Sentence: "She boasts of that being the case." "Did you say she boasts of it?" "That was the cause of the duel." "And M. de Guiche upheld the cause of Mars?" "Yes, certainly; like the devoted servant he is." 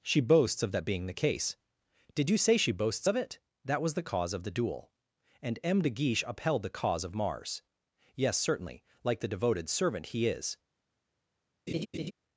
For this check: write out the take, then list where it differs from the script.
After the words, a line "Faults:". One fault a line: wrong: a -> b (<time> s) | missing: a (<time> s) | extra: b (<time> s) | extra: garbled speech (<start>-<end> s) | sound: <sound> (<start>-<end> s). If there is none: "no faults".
"She boasts of that being the case." "Did you say she boasts of it?" "That was the cause of the duel." "And M. de Guiche upheld the cause of Mars?" "Yes, certainly; like the devoted servant he is."
Faults:
sound: laugh (11.7-12.1 s)